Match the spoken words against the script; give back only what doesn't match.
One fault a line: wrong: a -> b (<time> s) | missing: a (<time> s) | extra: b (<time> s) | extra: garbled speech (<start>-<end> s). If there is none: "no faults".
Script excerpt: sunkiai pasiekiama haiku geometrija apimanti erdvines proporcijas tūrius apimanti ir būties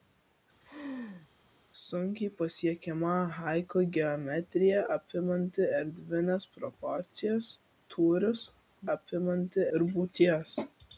no faults